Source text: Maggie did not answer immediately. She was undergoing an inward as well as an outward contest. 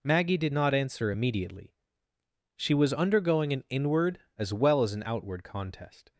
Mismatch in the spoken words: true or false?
false